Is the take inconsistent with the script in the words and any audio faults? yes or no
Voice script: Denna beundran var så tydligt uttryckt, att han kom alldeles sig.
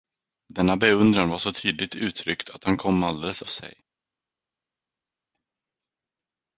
no